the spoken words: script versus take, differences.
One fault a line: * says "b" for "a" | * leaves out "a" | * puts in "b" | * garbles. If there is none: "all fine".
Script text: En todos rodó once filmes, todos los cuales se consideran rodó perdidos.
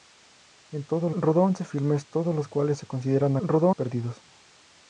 all fine